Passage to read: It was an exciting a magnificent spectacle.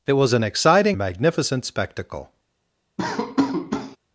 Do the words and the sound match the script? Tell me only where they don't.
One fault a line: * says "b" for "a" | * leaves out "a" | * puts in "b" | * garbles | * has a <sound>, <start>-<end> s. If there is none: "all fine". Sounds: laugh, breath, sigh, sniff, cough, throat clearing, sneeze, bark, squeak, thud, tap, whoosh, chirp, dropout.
* has a laugh, 3.0-4.0 s